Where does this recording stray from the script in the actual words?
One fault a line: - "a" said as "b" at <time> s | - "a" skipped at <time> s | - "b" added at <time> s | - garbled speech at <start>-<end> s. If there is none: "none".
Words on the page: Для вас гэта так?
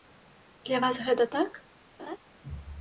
none